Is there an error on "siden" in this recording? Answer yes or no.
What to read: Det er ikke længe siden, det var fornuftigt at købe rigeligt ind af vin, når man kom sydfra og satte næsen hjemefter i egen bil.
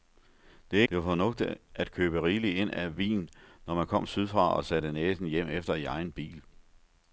yes